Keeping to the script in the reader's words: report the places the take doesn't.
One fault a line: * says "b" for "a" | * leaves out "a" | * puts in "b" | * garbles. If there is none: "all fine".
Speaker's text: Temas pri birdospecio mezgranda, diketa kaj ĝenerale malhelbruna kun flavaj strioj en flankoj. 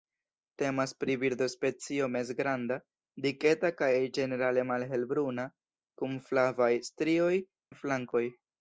all fine